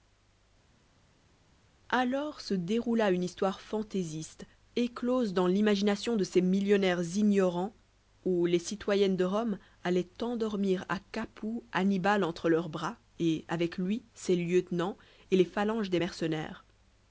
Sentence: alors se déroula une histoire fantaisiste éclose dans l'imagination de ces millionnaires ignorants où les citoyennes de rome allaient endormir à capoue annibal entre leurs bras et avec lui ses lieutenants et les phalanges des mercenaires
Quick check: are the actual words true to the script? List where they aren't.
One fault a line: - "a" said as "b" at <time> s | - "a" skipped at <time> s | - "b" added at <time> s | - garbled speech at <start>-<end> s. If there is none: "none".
none